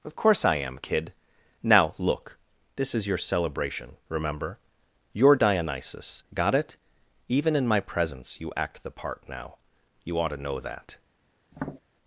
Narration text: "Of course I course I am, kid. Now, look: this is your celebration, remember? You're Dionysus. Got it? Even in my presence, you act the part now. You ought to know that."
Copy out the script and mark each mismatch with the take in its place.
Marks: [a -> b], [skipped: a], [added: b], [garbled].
"Of course I [skipped: course I] am, kid. Now, look: this is your celebration, remember? You're Dionysus. Got it? Even in my presence, you act the part now. You ought to know that."